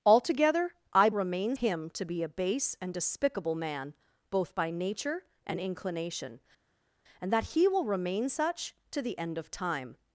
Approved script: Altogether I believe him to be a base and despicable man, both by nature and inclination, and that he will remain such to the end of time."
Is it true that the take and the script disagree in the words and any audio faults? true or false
true